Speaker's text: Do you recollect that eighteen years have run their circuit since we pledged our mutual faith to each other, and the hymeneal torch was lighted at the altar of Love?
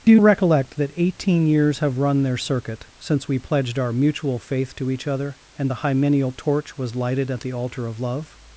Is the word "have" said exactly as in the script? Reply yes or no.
yes